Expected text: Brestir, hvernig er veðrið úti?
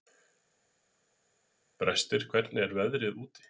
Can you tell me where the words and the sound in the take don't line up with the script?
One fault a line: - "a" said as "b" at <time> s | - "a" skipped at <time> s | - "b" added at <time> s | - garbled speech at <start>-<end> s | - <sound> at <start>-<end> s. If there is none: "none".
none